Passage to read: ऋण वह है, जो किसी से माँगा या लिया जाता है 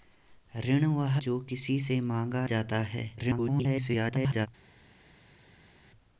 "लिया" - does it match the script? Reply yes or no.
no